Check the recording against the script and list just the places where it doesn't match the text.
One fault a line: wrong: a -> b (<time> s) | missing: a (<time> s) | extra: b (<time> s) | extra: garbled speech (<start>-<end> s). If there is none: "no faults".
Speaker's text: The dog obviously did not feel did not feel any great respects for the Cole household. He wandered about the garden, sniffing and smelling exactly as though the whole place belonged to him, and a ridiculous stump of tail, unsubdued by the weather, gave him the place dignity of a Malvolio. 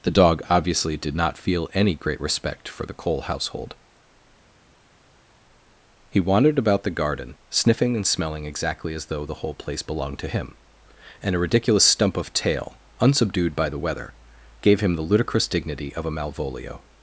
missing: did not feel (1.7 s)
wrong: respects -> respect (2.2 s)
wrong: place -> ludicrous (15.0 s)